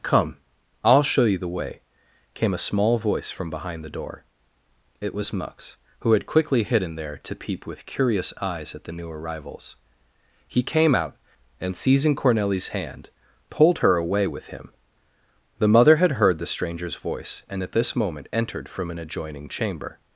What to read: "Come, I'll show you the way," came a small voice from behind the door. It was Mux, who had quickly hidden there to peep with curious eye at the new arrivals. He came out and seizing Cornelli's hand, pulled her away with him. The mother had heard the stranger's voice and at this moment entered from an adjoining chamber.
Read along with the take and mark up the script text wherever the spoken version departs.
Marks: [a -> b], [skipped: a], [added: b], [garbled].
"Come, I'll show you the way," came a small voice from behind the door. It was Mux, who had quickly hidden there to peep with curious [eye -> eyes] at the new arrivals. He came out and seizing Cornelli's hand, pulled her away with him. The mother had heard the stranger's voice and at this moment entered from an adjoining chamber.